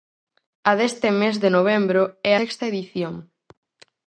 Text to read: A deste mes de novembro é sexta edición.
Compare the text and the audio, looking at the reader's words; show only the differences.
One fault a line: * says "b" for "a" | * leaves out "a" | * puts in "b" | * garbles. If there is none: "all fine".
all fine